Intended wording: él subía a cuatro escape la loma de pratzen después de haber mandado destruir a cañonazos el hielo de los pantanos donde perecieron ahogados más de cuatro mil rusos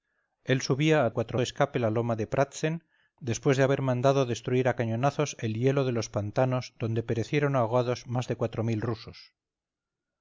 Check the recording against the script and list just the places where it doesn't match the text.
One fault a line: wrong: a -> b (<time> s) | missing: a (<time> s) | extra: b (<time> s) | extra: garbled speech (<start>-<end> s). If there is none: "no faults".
no faults